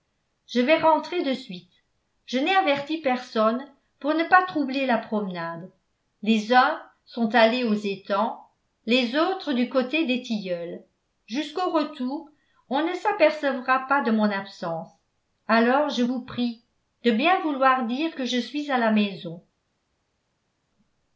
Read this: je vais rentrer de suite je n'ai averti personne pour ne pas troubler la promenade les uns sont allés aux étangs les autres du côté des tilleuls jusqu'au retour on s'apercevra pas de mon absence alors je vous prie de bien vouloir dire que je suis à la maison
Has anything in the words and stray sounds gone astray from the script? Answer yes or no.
yes